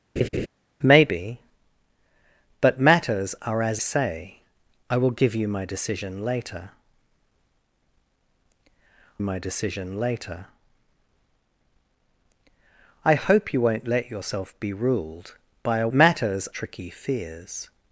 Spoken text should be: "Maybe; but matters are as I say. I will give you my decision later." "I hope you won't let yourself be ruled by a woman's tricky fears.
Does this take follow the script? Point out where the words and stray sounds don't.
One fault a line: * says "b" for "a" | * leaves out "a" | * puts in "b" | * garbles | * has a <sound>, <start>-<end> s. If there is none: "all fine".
* has a laugh, 0.2-0.5 s
* leaves out "I"
* puts in "my decision later"
* says "matters" for "woman's"